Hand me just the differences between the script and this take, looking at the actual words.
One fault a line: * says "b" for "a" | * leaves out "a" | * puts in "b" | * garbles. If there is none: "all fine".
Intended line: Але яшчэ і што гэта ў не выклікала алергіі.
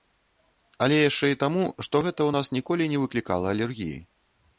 * puts in "таму"
* puts in "нас ніколі"